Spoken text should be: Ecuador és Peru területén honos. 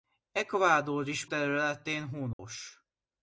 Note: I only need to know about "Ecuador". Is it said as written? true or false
true